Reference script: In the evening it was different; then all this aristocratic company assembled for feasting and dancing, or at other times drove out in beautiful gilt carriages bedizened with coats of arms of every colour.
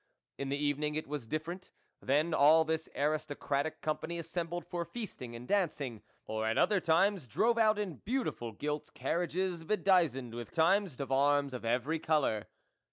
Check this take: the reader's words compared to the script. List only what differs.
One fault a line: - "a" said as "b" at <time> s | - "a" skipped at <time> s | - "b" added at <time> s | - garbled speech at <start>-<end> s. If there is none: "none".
- "coats" said as "times" at 10.5 s